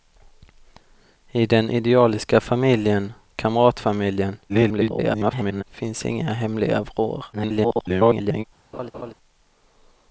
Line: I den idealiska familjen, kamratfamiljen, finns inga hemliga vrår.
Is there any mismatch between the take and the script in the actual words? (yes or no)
yes